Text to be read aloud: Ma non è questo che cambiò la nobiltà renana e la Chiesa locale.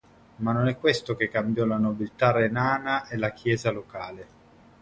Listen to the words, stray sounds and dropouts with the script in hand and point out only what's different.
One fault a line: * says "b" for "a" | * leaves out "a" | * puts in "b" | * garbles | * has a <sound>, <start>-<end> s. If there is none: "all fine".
all fine